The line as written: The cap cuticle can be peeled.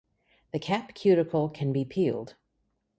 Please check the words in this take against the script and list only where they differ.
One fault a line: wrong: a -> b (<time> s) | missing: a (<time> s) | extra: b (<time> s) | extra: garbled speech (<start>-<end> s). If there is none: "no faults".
no faults